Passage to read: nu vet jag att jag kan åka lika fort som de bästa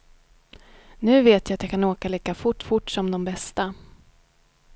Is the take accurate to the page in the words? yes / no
no